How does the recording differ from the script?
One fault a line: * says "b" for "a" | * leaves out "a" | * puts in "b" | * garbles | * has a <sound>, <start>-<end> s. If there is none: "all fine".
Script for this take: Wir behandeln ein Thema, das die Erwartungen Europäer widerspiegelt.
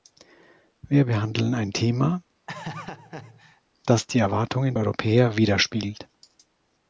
* has a laugh, 2.5-3.6 s